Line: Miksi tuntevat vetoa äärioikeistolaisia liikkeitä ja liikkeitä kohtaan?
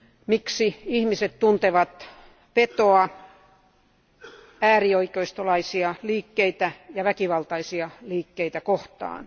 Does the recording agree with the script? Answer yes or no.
no